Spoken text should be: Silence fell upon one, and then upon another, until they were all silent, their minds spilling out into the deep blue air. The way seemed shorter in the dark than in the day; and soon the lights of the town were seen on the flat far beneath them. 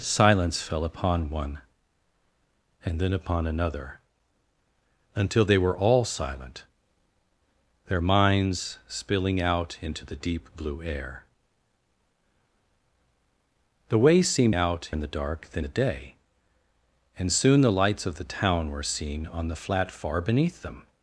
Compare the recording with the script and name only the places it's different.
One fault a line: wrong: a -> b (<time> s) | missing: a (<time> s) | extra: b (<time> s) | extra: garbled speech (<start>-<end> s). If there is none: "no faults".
wrong: shorter -> out (14.5 s)
missing: in (15.6 s)